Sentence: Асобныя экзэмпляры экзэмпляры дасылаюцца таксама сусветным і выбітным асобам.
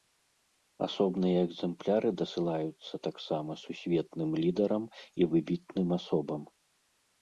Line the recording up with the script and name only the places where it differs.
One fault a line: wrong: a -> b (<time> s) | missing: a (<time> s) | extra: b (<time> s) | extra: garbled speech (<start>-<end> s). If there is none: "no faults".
missing: экзэмпляры (2.1 s)
extra: лідарам (4.4 s)